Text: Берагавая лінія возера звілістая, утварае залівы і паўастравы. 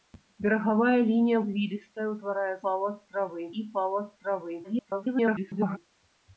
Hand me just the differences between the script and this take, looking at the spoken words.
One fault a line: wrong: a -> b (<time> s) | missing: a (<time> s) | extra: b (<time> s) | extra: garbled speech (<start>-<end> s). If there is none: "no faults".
missing: возера (1.4 s)
wrong: залівы -> паўастравы (2.6 s)
extra: garbled speech (4.6-5.8 s)